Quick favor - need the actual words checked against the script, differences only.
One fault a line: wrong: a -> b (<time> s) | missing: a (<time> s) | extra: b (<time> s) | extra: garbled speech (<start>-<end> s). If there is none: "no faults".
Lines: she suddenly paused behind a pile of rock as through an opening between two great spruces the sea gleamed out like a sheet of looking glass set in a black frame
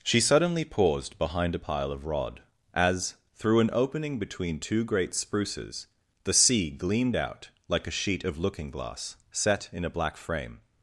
wrong: rock -> rod (2.1 s)